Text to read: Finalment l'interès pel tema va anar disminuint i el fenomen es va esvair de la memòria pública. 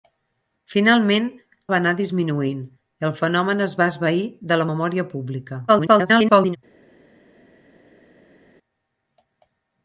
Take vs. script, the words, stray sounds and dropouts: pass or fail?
fail